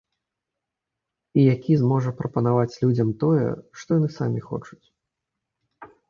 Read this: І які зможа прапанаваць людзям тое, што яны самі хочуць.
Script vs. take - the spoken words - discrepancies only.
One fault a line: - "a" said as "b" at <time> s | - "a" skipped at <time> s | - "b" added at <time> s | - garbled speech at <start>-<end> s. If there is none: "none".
none